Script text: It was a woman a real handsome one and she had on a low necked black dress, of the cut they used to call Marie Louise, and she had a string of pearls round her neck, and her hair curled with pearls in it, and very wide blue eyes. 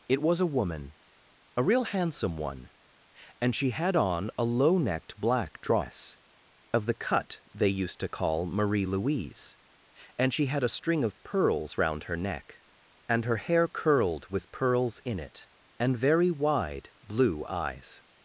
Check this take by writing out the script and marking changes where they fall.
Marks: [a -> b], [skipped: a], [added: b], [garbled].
It was a woman a real handsome one and she had on a low necked black dress, of the cut they used to call Marie Louise, and she had a string of pearls round her neck, and her hair curled with pearls in it, and very wide blue eyes.